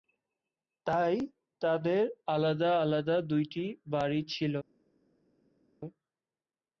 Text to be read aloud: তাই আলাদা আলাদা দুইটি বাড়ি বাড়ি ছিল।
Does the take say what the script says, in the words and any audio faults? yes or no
no